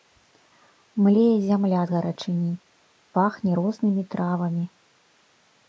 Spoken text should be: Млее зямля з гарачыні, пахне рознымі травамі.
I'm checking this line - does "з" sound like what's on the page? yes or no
yes